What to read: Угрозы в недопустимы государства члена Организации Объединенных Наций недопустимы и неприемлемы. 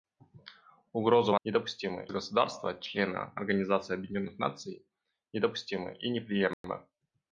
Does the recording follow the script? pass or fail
pass